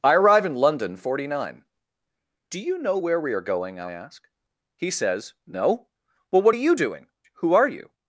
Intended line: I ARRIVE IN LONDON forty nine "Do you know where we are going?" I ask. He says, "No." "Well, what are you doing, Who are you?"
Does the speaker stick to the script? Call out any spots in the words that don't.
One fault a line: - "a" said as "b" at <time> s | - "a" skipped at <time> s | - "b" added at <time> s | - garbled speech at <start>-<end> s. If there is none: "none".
none